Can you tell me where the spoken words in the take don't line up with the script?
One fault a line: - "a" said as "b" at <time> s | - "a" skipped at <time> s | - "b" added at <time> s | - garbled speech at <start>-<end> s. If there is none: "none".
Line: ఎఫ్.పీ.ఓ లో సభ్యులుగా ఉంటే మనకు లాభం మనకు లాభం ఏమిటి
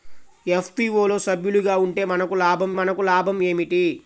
none